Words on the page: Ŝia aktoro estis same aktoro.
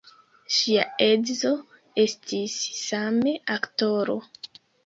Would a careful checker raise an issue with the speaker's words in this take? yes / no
yes